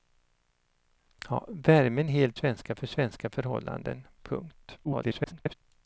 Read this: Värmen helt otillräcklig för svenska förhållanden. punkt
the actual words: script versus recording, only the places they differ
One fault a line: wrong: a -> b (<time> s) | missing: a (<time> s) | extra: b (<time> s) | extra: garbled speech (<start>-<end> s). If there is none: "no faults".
wrong: otillräcklig -> svenska (2.3 s)
extra: garbled speech (4.8-5.5 s)